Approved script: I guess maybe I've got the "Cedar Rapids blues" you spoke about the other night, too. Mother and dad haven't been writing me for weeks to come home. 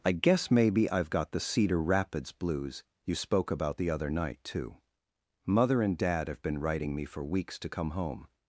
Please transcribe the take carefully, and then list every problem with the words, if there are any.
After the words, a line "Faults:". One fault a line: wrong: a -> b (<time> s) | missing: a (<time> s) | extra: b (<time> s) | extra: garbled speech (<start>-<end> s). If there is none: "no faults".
I guess maybe I've got the "Cedar Rapids blues" you spoke about the other night, too. Mother and dad have been writing me for weeks to come home.
Faults:
wrong: haven't -> have (6.3 s)